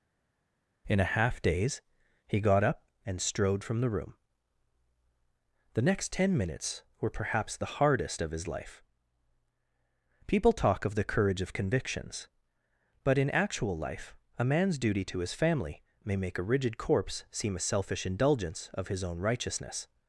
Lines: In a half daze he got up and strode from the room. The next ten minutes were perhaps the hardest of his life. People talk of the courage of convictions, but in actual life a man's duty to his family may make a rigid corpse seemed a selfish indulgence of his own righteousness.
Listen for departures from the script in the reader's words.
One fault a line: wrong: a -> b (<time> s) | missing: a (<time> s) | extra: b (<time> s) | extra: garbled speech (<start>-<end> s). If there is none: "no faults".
wrong: seemed -> seem (17.3 s)